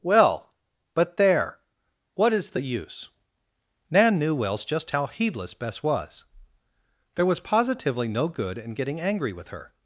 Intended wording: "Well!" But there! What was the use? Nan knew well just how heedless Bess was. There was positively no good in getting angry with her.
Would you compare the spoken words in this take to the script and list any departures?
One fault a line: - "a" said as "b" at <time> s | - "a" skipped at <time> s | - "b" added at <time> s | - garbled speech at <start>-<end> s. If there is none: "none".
- "was" said as "is" at 2.3 s
- "well" said as "wells" at 4.3 s